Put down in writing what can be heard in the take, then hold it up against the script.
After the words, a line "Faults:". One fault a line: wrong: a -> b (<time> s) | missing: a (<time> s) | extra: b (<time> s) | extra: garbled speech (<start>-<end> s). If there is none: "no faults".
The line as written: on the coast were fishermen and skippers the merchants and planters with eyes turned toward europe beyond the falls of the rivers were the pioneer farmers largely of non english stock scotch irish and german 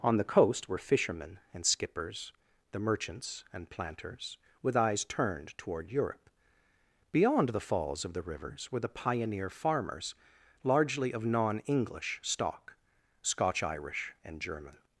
on the coast were fishermen and skippers the merchants and planters with eyes turned toward europe beyond the falls of the rivers were the pioneer farmers largely of non english stock scotch irish and german
Faults:
no faults